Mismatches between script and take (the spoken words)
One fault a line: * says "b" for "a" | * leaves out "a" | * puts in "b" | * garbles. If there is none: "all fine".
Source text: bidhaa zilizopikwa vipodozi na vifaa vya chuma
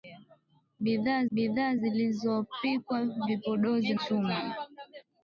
* puts in "bidhaa"
* leaves out "na vifaa vya"